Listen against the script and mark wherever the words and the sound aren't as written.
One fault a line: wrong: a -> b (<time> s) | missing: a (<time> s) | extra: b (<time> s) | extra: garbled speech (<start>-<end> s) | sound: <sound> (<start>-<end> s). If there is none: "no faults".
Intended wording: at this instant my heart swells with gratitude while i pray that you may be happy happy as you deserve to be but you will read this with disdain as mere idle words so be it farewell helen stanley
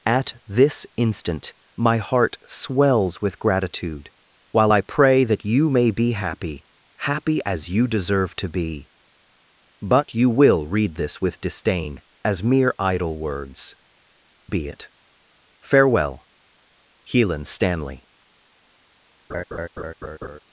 missing: so (13.7 s)
sound: laugh (19.3-20.4 s)